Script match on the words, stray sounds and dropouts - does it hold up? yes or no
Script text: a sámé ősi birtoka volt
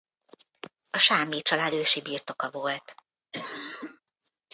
no